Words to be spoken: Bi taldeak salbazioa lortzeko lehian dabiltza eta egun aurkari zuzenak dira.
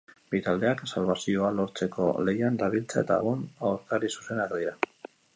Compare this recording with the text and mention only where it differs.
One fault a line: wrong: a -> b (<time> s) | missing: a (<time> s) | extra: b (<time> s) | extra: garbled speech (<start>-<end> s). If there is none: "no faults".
no faults